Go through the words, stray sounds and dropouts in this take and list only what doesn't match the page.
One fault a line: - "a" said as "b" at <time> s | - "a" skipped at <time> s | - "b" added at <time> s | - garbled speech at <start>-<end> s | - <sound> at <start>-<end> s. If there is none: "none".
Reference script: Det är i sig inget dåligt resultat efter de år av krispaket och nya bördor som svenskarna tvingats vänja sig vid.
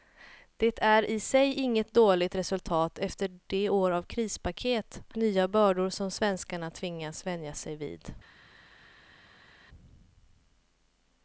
- "och" skipped at 5.0 s